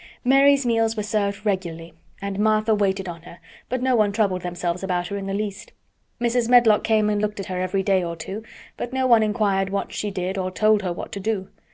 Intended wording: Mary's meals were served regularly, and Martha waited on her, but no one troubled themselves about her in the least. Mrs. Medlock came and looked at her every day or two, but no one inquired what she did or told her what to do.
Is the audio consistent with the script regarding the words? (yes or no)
yes